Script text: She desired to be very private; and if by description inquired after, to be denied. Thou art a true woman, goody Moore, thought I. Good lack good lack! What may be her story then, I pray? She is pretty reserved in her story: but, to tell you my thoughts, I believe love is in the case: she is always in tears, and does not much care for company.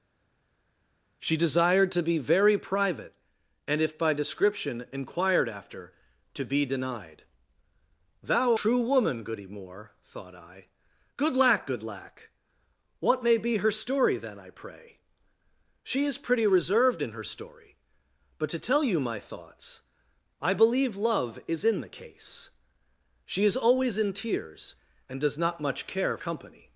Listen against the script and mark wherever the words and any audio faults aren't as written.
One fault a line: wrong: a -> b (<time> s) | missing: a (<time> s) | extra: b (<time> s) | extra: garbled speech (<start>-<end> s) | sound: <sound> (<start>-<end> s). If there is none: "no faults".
missing: art a (8.5 s)
missing: for (26.2 s)